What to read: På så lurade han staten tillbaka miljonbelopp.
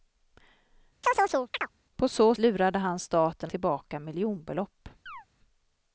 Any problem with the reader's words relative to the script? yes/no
no